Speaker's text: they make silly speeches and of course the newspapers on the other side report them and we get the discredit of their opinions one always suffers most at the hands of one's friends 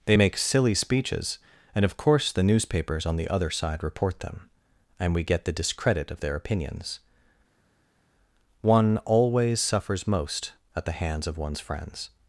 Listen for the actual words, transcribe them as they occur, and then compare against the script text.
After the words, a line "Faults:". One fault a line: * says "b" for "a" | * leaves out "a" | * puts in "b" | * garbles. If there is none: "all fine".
they make silly speeches and of course the newspapers on the other side report them and we get the discredit of their opinions one always suffers most at the hands of one's friends
Faults:
all fine